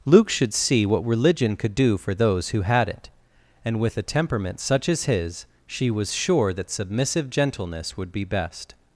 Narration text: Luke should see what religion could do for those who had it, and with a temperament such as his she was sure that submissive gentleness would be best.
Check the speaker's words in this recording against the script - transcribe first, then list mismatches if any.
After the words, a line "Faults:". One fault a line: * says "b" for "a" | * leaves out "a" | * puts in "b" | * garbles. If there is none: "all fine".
Luke should see what religion could do for those who had it, and with a temperament such as his she was sure that submissive gentleness would be best.
Faults:
all fine